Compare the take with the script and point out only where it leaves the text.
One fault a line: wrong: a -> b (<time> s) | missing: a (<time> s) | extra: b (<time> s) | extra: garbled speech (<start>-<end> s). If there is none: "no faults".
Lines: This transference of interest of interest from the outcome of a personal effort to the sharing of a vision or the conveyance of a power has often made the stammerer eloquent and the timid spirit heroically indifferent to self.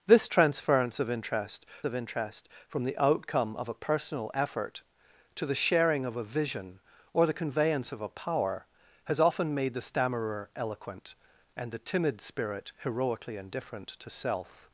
no faults